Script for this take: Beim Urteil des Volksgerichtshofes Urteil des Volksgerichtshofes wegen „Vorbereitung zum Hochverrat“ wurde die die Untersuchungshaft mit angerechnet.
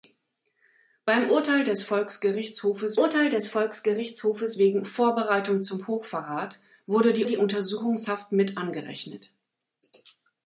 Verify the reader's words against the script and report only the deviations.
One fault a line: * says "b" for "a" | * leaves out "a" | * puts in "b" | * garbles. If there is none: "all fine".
all fine